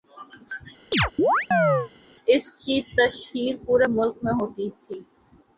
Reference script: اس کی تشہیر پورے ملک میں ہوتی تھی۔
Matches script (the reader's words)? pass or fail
pass